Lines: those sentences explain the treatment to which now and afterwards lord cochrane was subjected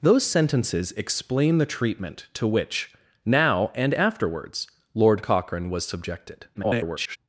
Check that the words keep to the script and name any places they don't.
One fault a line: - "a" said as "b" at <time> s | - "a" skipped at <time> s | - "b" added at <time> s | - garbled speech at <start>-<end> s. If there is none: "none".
- garbled speech at 6.5-7.2 s